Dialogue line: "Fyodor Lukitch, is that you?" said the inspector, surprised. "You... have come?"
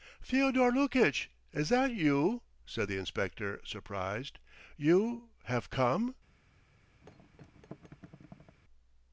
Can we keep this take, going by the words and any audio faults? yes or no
no